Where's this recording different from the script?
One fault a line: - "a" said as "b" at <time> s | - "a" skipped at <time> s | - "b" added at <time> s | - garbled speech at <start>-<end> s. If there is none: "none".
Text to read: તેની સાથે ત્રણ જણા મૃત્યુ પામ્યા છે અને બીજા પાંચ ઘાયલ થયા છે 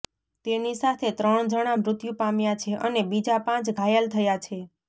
none